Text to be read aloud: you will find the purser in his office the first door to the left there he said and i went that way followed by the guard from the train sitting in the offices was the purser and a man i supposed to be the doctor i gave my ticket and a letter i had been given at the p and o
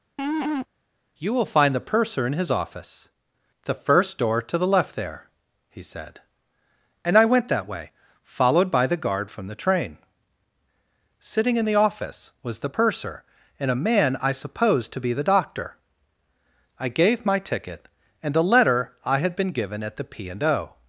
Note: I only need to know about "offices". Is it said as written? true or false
false